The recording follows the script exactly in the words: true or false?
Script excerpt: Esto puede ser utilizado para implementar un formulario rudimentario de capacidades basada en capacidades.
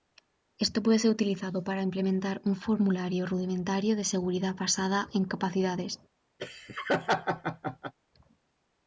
false